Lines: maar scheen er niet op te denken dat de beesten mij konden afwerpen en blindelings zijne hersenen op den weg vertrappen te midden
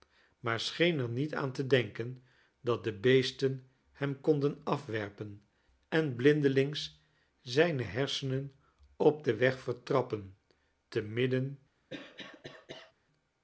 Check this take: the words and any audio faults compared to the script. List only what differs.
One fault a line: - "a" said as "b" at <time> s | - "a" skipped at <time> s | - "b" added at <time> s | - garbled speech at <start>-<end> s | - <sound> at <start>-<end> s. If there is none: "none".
- "op" said as "aan" at 1.4 s
- "mij" said as "hem" at 3.9 s
- cough at 11.9-12.9 s